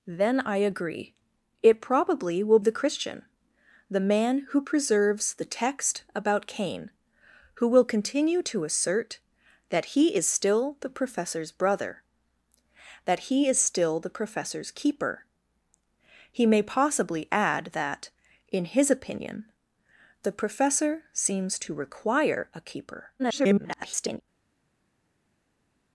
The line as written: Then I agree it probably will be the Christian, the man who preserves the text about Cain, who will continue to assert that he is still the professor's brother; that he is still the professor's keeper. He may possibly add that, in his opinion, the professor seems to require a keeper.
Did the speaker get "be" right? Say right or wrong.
wrong